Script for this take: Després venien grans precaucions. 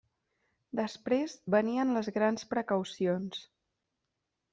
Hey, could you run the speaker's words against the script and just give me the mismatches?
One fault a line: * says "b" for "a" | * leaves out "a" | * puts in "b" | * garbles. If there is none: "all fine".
* puts in "les"